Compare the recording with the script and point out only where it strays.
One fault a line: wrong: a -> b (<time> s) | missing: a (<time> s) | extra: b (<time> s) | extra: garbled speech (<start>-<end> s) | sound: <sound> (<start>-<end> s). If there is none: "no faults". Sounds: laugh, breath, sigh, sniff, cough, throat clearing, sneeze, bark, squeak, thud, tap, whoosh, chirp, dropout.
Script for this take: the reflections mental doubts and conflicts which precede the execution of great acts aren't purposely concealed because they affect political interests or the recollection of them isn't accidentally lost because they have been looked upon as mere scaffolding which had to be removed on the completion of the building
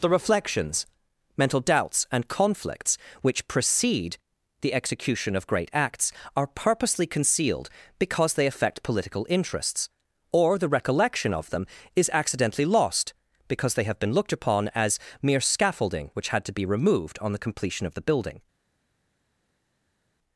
wrong: aren't -> are (6.3 s)
wrong: isn't -> is (11.9 s)